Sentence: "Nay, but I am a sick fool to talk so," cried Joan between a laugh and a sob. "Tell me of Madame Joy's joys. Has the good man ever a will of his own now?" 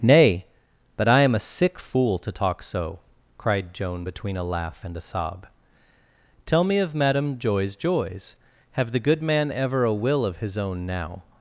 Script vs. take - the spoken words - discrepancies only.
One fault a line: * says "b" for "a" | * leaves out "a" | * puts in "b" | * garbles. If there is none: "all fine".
* says "Have" for "Has"